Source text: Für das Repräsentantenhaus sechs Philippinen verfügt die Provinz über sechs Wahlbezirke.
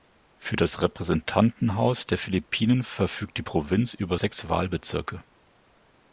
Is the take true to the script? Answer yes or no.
no